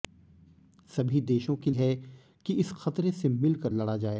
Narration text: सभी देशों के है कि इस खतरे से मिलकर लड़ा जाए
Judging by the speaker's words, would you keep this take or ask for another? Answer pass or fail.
pass